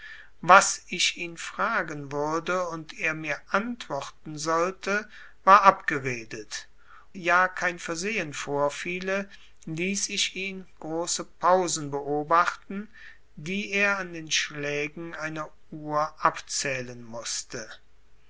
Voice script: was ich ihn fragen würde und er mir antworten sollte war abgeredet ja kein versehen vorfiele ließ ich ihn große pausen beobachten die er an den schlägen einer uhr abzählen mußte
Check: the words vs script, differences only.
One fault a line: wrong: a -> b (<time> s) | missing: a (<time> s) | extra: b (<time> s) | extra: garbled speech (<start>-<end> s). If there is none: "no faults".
no faults